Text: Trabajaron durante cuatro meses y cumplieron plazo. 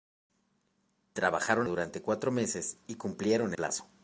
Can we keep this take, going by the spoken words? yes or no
yes